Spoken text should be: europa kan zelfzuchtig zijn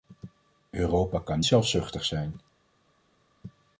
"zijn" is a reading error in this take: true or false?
false